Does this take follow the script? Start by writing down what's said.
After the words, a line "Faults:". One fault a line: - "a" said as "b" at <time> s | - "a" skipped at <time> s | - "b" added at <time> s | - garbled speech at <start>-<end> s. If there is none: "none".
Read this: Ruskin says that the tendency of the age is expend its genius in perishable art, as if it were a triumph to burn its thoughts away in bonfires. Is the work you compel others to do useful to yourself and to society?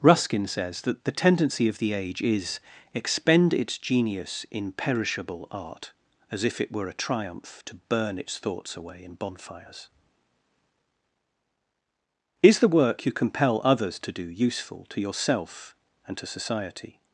Ruskin says that the tendency of the age is expend its genius in perishable art, as if it were a triumph to burn its thoughts away in bonfires. Is the work you compel others to do useful to yourself and to society?
Faults:
none